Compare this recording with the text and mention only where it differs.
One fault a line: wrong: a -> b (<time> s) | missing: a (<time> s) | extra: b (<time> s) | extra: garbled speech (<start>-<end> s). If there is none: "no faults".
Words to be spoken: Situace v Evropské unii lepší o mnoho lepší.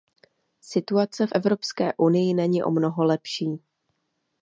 wrong: lepší -> není (2.3 s)